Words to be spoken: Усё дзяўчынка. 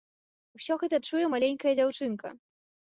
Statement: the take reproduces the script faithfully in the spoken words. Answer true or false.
false